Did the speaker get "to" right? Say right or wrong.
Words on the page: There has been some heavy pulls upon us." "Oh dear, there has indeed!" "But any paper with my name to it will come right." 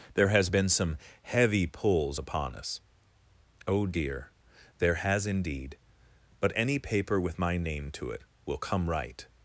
right